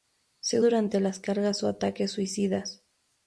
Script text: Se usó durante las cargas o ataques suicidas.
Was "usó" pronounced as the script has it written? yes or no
no